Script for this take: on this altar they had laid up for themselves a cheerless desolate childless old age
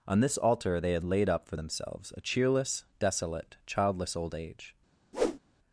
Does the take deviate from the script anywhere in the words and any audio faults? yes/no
yes